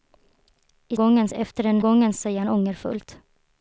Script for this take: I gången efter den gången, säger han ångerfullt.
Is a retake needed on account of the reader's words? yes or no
no